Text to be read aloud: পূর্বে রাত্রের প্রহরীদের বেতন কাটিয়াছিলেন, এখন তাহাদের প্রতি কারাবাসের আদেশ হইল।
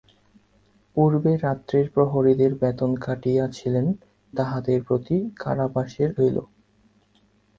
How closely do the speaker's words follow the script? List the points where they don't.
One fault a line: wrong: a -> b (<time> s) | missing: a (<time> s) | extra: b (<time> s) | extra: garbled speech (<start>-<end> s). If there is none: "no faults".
missing: এখন (3.9 s)
missing: আদেশ (6.1 s)